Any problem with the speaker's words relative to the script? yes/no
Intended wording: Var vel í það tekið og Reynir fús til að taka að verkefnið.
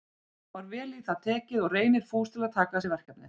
yes